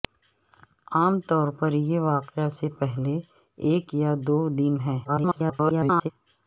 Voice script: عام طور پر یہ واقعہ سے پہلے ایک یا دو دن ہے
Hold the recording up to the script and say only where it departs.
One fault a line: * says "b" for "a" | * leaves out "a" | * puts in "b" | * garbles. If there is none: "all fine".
* garbles